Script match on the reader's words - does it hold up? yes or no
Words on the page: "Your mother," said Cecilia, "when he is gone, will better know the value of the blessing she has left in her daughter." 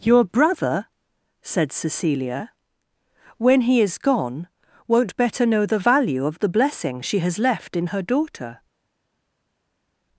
no